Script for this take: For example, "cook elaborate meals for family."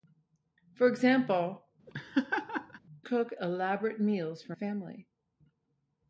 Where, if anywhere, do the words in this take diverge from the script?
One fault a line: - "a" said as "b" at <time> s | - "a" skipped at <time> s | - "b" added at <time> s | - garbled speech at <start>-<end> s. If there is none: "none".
none